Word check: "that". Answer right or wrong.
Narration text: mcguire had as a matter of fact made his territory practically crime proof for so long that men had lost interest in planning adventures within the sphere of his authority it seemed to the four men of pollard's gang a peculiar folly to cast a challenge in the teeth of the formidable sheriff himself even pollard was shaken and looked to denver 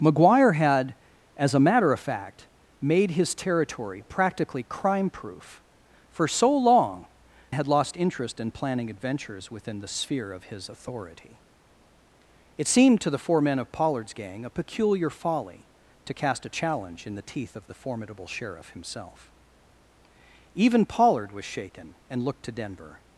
wrong